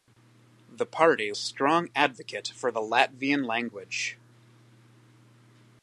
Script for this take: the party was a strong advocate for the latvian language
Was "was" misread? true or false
true